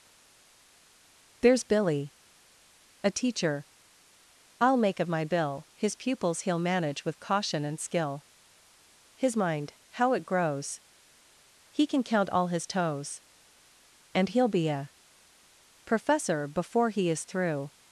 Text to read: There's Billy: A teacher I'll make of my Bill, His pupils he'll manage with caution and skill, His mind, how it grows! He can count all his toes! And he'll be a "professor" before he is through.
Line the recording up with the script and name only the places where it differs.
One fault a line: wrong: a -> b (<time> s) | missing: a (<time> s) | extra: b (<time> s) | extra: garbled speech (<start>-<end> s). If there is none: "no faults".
no faults